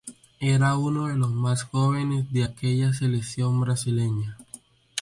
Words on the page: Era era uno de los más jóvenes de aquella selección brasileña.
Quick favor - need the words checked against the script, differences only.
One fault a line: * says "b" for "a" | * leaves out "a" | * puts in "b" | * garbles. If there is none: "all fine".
* leaves out "era"